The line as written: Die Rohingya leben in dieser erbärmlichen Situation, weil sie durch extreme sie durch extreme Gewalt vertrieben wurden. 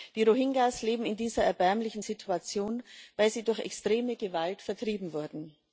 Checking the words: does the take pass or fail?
fail